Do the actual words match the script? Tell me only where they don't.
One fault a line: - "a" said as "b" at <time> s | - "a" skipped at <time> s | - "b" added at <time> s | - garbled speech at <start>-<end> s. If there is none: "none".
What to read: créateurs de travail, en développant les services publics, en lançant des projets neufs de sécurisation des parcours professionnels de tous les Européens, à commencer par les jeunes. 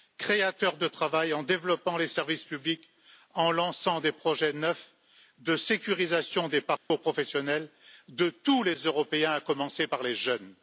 none